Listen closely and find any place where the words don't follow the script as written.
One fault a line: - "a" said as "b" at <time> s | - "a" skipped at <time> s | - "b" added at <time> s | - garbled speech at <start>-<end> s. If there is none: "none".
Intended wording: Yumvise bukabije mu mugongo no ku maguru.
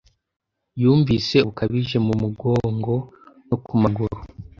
none